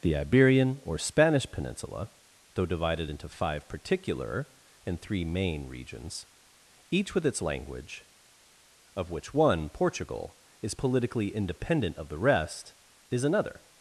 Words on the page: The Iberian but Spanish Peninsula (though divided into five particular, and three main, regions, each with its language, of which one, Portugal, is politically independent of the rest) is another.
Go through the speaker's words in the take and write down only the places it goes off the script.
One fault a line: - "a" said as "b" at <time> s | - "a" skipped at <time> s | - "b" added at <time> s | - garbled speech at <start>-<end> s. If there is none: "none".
- "but" said as "or" at 0.8 s